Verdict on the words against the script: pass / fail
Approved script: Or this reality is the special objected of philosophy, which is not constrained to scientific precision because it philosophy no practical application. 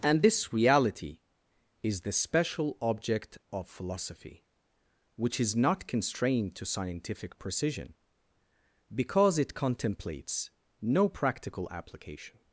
fail